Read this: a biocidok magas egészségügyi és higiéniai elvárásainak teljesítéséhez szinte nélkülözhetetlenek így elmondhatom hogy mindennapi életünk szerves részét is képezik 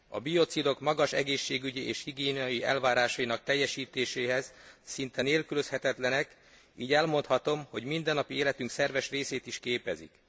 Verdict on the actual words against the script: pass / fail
pass